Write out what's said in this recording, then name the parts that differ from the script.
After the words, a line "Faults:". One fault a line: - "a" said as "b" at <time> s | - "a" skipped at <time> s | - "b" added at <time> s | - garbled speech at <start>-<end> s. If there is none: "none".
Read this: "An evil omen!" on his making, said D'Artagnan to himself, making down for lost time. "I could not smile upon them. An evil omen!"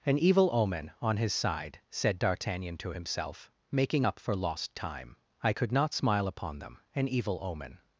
"An evil omen!" on his side, said D'Artagnan to himself, making up for lost time. "I could not smile upon them. An evil omen!"
Faults:
- "making" said as "side" at 1.3 s
- "down" said as "up" at 4.0 s